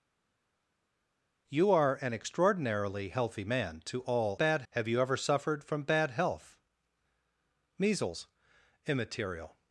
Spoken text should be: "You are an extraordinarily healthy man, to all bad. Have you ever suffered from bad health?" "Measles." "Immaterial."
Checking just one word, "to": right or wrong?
right